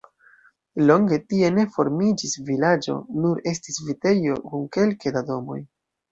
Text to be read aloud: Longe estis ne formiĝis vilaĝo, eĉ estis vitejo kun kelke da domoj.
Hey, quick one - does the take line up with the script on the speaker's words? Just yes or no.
no